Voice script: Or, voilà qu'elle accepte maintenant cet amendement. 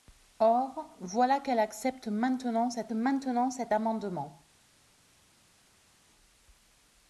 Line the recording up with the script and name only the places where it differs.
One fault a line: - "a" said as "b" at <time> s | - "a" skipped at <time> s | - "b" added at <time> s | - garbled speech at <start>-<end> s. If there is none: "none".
- "maintenant cet" added at 2.9 s